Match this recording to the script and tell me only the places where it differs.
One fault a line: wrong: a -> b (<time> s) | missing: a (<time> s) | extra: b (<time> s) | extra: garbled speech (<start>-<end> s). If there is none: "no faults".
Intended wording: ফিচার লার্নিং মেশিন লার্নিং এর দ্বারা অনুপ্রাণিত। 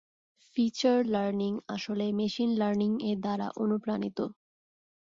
extra: আসলে (1.8 s)